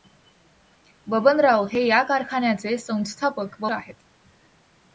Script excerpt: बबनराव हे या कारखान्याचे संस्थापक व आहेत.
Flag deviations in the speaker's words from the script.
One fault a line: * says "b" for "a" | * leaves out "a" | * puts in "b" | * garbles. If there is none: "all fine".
all fine